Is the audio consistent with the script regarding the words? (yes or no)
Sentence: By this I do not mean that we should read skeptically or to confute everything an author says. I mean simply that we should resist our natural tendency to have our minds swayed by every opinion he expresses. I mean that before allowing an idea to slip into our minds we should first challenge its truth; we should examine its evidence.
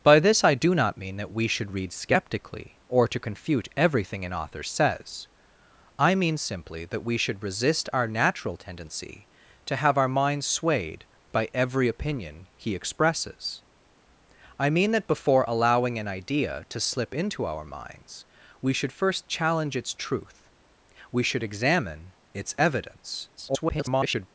no